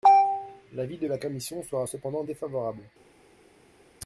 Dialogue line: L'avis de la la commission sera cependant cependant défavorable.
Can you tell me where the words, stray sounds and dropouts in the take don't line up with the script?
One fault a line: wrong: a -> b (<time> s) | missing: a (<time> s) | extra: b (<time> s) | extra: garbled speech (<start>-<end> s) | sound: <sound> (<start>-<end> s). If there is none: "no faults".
missing: la (1.2 s)
missing: cependant (2.2 s)